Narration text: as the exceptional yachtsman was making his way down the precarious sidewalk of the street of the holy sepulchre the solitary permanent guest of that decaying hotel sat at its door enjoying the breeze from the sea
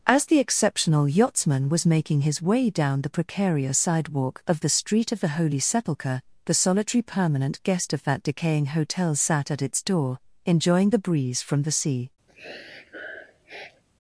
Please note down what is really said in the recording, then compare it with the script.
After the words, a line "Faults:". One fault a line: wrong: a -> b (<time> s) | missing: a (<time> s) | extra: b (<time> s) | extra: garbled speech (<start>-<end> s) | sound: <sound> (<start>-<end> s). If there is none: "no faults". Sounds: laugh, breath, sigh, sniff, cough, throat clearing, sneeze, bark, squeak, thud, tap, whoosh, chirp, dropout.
as the exceptional yachtsman was making his way down the precarious sidewalk of the street of the holy sepulchre the solitary permanent guest of that decaying hotel sat at its door enjoying the breeze from the sea
Faults:
sound: sniff (12.3-13.8 s)